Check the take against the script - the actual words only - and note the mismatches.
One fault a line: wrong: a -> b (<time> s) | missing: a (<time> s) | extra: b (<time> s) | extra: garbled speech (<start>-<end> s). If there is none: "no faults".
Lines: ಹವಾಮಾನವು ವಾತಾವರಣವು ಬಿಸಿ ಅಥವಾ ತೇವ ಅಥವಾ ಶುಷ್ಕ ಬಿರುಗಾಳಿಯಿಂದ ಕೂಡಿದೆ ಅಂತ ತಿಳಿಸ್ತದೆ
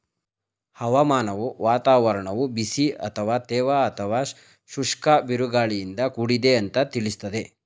no faults